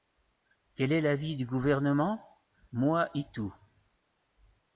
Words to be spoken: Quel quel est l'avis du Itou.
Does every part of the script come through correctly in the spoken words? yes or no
no